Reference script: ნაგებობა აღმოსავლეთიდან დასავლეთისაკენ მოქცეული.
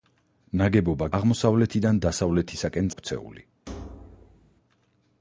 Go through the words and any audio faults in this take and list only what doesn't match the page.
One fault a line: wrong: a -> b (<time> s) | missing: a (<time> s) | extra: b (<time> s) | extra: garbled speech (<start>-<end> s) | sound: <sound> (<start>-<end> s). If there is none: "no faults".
sound: thud (3.7-4.6 s)